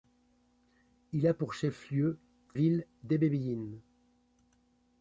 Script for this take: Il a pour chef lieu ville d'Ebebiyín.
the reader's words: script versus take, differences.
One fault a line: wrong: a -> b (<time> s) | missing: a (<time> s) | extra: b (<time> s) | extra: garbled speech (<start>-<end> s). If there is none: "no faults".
no faults